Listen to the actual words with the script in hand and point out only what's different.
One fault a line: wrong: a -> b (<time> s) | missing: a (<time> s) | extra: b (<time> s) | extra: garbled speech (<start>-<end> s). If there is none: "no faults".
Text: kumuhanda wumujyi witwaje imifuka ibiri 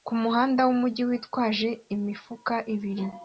no faults